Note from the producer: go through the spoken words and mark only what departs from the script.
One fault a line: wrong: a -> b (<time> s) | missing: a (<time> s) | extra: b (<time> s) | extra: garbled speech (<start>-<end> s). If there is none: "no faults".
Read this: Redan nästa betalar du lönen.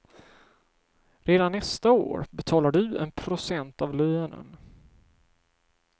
extra: år (1.9 s)
extra: en procent av (3.0 s)